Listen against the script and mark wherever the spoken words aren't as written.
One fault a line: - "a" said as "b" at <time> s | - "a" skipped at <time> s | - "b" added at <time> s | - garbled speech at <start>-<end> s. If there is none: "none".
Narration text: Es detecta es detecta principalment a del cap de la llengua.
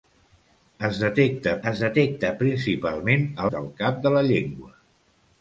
none